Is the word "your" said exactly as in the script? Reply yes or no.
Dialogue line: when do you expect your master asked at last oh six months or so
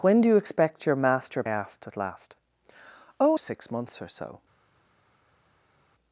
yes